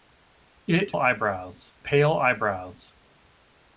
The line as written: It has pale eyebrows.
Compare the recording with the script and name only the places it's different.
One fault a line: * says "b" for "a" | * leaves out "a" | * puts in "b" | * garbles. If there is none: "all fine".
* says "eyebrows" for "has"